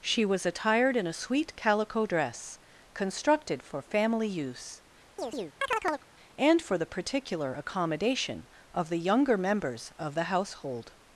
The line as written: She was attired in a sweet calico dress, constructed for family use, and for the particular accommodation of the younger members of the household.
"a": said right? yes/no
yes